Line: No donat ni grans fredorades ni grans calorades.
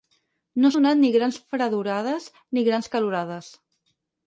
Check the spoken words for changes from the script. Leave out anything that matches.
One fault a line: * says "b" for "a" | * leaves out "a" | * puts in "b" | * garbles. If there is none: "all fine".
all fine